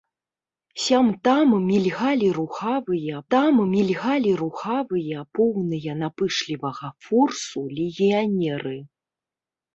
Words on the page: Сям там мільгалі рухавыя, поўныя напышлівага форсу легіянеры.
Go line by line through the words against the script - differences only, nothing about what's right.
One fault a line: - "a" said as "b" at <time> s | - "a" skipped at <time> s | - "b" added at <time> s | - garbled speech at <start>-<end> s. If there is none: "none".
- "там мільгалі рухавыя" added at 3.3 s